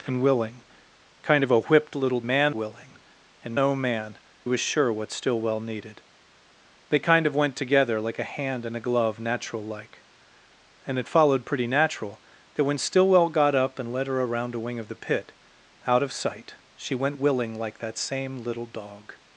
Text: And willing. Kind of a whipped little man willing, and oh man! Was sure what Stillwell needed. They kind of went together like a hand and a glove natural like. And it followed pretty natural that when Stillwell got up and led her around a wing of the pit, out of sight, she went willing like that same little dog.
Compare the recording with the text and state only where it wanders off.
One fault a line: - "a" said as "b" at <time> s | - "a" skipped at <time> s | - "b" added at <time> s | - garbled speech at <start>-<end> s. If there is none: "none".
none